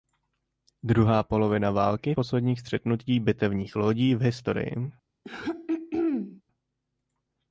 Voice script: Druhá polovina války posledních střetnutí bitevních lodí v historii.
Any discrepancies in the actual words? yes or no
no